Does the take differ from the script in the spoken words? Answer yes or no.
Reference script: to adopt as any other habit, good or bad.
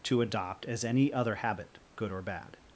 no